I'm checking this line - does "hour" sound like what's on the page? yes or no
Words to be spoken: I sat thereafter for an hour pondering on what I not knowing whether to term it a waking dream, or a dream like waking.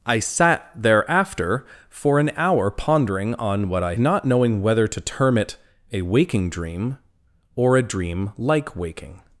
yes